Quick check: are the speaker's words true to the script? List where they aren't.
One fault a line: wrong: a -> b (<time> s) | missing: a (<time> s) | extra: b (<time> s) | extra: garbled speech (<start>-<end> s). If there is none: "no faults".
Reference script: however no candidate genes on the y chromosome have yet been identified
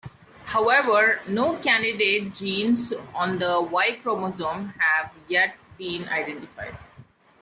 no faults